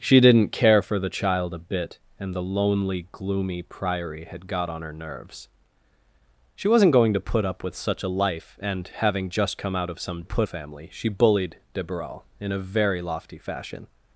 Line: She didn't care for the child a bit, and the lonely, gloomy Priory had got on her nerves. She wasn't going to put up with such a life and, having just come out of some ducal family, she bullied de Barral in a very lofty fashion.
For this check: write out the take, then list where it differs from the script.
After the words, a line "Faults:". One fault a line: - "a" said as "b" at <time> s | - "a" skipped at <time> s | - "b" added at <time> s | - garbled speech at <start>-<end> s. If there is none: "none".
She didn't care for the child a bit, and the lonely, gloomy Priory had got on her nerves. She wasn't going to put up with such a life and, having just come out of some put family, she bullied de Barral in a very lofty fashion.
Faults:
- "ducal" said as "put" at 10.2 s